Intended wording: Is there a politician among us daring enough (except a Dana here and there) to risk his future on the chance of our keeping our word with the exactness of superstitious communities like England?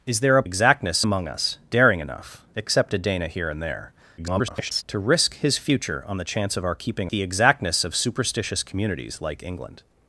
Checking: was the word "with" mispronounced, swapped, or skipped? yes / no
yes